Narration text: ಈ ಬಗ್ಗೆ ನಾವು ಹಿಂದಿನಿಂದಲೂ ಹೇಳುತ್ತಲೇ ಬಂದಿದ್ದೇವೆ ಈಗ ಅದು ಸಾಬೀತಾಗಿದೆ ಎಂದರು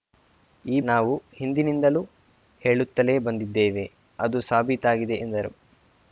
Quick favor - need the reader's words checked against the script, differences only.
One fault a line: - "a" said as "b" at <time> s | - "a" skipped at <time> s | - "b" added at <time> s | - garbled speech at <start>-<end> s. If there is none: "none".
- "ಬಗ್ಗೆ" skipped at 0.8 s
- "ಈಗ" skipped at 3.9 s